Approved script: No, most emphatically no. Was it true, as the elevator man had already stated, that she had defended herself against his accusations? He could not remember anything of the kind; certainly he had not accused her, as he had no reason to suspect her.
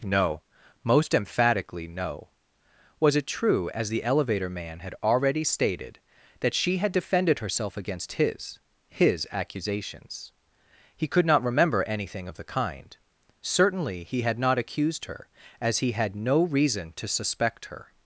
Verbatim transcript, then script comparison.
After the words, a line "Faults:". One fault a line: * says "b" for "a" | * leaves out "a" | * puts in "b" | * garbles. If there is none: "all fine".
No, most emphatically no. Was it true, as the elevator man had already stated, that she had defended herself against his his accusations? He could not remember anything of the kind; certainly he had not accused her, as he had no reason to suspect her.
Faults:
* puts in "his"